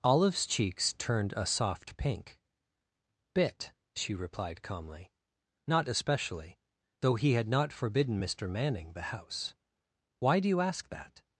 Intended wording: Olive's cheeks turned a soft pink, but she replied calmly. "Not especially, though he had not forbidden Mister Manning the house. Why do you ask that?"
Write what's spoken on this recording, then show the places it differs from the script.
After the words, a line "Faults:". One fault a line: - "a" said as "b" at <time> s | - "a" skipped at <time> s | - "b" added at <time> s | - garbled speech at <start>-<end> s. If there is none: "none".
Olive's cheeks turned a soft pink, bit she replied calmly. "Not especially, though he had not forbidden Mister Manning the house. Why do you ask that?"
Faults:
- "but" said as "bit" at 3.3 s